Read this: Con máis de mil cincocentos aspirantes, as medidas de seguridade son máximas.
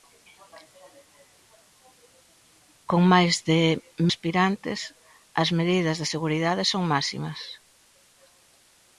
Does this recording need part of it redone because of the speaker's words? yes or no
yes